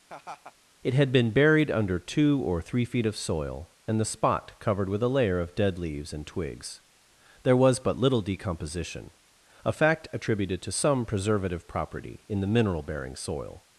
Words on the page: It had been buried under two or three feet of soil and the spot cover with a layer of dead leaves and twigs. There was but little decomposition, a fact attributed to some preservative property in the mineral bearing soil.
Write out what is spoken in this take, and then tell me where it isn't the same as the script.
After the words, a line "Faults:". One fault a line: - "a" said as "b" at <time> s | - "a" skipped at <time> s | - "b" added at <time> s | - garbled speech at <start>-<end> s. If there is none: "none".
It had been buried under two or three feet of soil and the spot covered with a layer of dead leaves and twigs. There was but little decomposition, a fact attributed to some preservative property in the mineral bearing soil.
Faults:
- "cover" said as "covered" at 4.6 s